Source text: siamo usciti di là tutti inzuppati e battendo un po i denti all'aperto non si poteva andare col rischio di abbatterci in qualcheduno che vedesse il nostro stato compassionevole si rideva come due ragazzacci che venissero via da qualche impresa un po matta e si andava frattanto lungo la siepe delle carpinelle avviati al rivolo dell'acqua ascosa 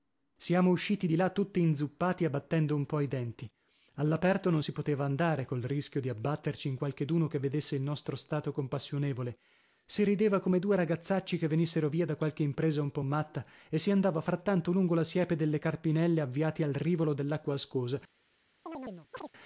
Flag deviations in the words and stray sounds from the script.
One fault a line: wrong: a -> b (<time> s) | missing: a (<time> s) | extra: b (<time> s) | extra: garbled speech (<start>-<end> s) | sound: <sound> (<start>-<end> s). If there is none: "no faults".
sound: chirp (18.7-19.3 s)